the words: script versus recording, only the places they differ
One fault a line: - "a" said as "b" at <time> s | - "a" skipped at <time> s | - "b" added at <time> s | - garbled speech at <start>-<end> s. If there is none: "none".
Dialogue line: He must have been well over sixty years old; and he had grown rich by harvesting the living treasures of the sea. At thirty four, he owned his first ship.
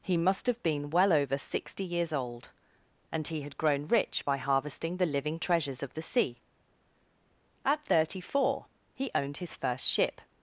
none